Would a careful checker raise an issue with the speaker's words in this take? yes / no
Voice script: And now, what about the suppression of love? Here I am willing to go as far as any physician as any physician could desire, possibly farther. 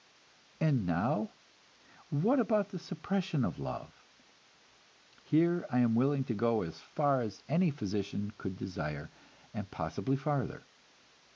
yes